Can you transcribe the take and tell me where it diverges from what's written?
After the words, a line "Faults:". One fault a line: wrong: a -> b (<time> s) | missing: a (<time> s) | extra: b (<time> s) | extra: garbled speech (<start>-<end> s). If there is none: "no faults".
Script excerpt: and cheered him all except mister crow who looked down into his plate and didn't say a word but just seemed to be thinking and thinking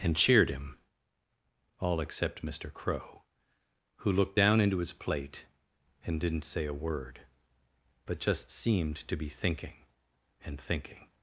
and cheered him all except mister crow who looked down into his plate and didn't say a word but just seemed to be thinking and thinking
Faults:
no faults